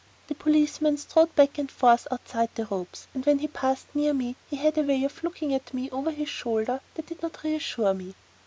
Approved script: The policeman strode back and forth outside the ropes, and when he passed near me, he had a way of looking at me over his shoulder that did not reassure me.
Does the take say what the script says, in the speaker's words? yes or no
yes